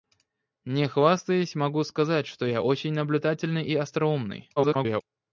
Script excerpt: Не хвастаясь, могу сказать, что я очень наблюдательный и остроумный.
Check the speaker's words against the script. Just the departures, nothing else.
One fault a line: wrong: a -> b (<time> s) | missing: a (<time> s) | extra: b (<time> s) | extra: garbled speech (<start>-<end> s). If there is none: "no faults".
extra: garbled speech (4.6-5.0 s)